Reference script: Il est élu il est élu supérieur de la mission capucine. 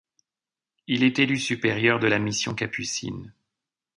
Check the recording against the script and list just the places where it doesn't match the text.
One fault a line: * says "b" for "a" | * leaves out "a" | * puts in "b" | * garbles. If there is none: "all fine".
* leaves out "il est élu"